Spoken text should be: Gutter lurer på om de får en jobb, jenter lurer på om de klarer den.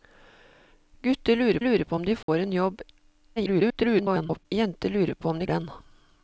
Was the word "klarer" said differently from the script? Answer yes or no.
yes